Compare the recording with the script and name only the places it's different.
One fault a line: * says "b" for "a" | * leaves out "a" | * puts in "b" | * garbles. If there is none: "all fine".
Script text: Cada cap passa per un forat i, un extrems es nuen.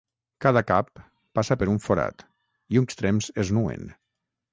all fine